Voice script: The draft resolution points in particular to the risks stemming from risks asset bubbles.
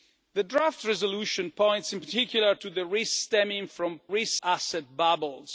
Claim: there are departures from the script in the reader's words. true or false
false